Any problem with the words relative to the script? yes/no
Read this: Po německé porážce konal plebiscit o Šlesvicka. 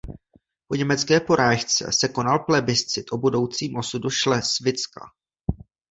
yes